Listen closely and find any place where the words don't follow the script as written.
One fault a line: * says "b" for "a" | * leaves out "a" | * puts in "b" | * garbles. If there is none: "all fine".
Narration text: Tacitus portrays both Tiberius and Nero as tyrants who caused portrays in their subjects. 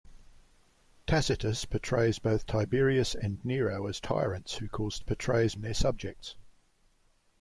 all fine